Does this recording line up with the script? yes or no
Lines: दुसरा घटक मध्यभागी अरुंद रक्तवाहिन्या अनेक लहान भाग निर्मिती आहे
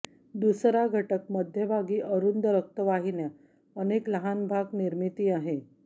yes